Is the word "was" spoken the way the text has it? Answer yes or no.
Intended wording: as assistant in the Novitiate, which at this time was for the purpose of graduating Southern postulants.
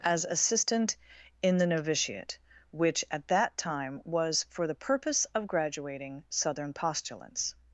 yes